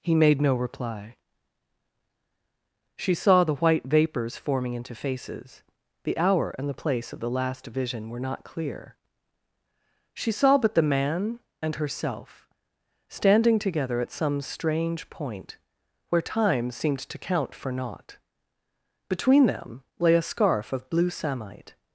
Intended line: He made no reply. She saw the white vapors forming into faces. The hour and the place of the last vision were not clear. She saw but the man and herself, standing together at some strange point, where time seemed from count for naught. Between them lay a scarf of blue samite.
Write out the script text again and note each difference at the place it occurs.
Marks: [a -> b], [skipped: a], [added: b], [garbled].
He made no reply. She saw the white vapors forming into faces. The hour and the place of the last vision were not clear. She saw but the man and herself, standing together at some strange point, where time seemed [from -> to] count for naught. Between them lay a scarf of blue samite.